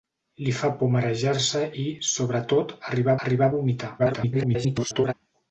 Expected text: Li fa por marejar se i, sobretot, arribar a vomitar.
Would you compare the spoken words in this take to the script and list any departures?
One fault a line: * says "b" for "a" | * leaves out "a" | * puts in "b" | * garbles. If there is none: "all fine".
* puts in "arribar"
* garbles